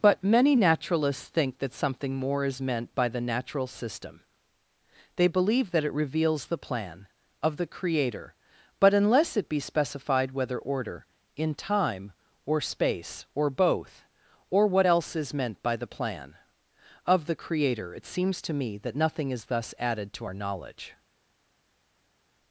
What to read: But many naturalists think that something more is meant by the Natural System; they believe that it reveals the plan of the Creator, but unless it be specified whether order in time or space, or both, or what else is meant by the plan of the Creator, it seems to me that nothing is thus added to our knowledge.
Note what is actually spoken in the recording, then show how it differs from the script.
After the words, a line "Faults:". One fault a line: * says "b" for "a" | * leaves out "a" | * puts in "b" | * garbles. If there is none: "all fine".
But many naturalists think that something more is meant by the Natural System; they believe that it reveals the plan of the Creator, but unless it be specified whether order in time or space, or both, or what else is meant by the plan of the Creator, it seems to me that nothing is thus added to our knowledge.
Faults:
all fine